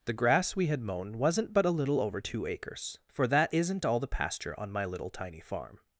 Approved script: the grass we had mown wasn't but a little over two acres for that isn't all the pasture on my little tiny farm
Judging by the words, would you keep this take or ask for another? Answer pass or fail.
pass